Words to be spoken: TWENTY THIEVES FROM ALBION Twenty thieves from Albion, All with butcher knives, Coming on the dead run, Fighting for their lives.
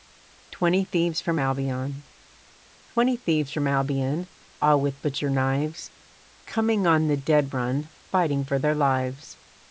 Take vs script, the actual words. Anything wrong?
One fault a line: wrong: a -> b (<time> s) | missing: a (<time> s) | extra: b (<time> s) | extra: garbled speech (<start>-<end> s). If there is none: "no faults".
no faults